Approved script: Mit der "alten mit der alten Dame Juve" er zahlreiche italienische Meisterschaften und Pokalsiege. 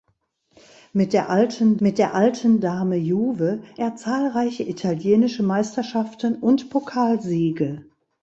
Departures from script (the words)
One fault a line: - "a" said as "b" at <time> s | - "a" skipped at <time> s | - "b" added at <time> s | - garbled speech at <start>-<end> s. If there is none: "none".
none